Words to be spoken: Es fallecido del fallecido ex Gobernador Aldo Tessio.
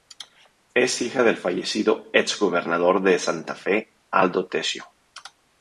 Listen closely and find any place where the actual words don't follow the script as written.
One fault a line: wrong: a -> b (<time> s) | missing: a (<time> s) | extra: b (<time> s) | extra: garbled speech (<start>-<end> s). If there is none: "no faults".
wrong: fallecido -> hija (1.0 s)
extra: de Santa Fe (3.0 s)